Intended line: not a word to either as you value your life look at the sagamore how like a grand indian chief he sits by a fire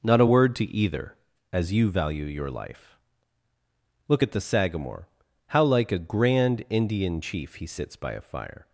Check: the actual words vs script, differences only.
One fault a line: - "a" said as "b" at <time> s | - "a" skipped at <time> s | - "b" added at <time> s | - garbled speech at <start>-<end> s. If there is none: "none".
none